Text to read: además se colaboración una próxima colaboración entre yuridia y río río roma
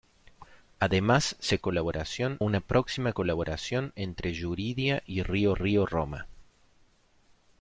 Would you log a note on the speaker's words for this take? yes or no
no